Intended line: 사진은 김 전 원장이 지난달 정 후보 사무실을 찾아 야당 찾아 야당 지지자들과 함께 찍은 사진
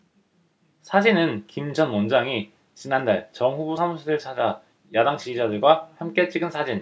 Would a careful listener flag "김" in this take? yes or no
no